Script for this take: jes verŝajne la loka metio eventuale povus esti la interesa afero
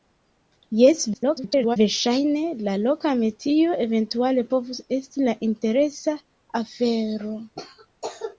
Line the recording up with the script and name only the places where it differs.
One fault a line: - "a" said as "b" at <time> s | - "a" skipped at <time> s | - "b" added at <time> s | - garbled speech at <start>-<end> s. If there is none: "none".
- garbled speech at 1.1-1.8 s